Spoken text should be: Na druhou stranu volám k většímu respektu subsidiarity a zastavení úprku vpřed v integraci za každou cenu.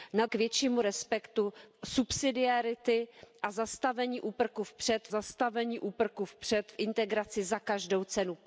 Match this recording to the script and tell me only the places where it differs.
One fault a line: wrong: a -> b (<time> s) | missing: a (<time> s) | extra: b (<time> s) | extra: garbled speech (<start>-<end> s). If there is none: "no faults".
missing: druhou stranu volám (0.2 s)
extra: zastavení úprku vpřed (5.1 s)